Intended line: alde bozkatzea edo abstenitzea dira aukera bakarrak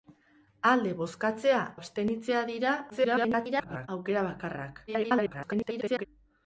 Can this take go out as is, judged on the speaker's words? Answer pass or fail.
fail